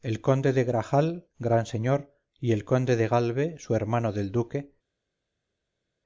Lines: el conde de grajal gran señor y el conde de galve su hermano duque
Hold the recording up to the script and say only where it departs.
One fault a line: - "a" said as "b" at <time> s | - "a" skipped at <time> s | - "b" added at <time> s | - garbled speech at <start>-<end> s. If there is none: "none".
- "del" added at 4.1 s